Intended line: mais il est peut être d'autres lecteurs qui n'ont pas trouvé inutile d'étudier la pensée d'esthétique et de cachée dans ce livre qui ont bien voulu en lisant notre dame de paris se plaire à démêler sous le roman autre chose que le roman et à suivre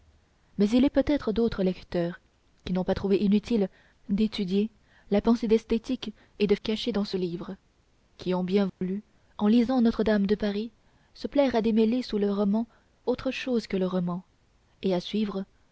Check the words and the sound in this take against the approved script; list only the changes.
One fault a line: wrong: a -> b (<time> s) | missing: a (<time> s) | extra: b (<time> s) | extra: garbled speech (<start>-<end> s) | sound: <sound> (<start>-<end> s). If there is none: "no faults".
sound: dropout (8.7-8.8 s)